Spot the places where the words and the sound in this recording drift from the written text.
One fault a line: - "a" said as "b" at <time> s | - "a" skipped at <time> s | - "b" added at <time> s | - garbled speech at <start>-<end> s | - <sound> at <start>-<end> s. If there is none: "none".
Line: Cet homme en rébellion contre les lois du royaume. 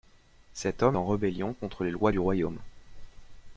none